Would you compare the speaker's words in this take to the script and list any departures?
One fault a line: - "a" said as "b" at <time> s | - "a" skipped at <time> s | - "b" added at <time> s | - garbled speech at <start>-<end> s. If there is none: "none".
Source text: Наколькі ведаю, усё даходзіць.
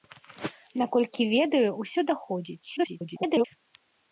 - garbled speech at 2.8-3.5 s